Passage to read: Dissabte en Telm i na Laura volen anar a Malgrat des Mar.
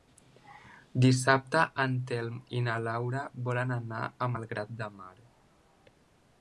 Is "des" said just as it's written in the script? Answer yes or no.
no